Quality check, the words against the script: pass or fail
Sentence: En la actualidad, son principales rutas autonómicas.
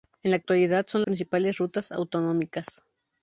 pass